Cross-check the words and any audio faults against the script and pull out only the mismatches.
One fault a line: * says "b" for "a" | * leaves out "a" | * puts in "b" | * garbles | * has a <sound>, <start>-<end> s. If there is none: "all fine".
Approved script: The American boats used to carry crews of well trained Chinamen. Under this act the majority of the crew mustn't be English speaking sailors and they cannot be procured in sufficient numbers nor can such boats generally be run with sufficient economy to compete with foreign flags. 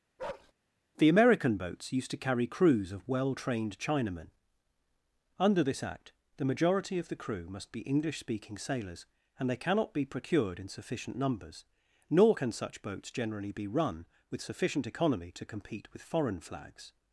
* has a bark, 0.2-0.5 s
* says "must" for "mustn't"